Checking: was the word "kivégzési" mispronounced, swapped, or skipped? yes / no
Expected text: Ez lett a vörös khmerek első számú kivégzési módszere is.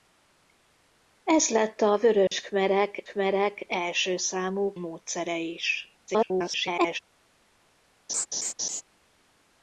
yes